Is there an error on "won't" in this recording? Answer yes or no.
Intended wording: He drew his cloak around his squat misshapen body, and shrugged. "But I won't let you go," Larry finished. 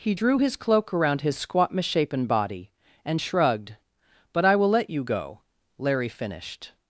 yes